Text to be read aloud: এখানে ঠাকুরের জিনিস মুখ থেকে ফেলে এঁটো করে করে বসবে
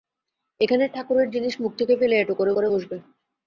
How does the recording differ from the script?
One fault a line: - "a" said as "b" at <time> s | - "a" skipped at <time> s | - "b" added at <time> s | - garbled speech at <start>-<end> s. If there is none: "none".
none